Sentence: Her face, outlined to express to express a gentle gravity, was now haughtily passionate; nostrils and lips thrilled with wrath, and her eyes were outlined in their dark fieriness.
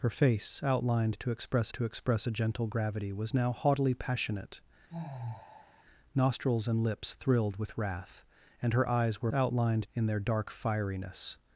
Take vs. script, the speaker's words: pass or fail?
pass